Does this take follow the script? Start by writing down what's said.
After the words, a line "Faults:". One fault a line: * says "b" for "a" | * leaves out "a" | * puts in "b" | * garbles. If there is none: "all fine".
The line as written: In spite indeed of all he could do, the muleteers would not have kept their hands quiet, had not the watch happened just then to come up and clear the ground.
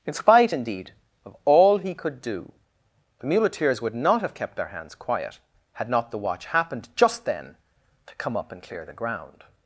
In spite indeed of all he could do, the muleteers would not have kept their hands quiet, had not the watch happened just then to come up and clear the ground.
Faults:
all fine